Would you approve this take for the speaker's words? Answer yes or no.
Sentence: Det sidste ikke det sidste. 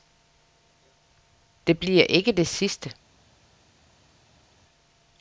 no